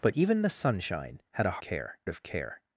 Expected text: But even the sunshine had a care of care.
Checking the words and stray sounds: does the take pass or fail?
pass